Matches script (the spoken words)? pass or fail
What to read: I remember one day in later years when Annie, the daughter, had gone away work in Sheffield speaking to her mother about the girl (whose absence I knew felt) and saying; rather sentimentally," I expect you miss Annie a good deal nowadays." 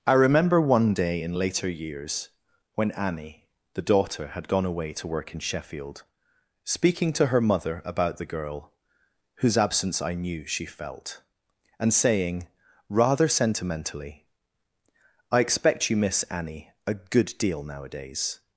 fail